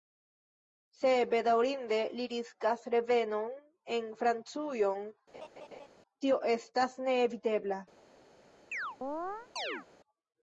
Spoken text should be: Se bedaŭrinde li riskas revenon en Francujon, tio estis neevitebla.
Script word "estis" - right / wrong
wrong